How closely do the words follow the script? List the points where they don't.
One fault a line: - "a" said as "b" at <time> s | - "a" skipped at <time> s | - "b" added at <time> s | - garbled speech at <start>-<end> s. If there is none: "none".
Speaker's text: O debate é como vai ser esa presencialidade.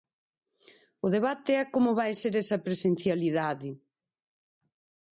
none